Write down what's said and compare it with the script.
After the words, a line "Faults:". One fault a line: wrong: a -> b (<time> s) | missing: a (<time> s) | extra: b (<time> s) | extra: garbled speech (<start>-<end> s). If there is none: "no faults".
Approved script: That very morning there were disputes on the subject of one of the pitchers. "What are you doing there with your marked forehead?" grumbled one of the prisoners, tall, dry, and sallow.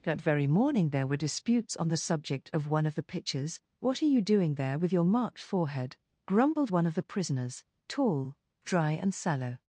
That very morning there were disputes on the subject of one of the pictures. "What are you doing there with your marked forehead?" grumbled one of the prisoners, tall, dry, and sallow.
Faults:
wrong: pitchers -> pictures (3.0 s)